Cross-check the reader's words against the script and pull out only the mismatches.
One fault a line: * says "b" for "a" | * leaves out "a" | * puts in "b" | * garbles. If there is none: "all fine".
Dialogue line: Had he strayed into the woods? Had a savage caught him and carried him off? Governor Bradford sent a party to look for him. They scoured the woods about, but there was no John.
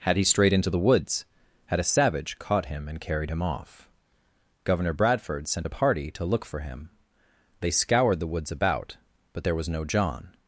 all fine